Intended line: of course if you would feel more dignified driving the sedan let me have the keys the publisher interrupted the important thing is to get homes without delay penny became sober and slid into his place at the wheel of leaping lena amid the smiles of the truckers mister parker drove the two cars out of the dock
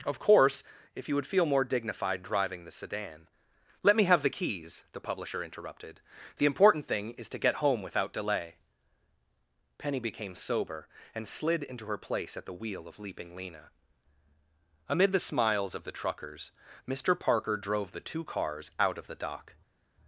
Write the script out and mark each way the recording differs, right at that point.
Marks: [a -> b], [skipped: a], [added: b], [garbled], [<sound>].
of course if you would feel more dignified driving the sedan let me have the keys the publisher interrupted the important thing is to get [homes -> home] without delay penny became sober and slid into [his -> her] place at the wheel of leaping lena amid the smiles of the truckers mister parker drove the two cars out of the dock